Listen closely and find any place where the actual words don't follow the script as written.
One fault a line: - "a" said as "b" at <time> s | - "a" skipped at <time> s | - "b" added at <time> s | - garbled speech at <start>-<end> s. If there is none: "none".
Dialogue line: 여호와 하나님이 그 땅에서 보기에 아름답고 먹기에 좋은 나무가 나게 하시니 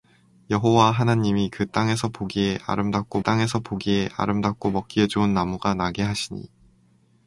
- "땅에서 보기에 아름답고" added at 3.2 s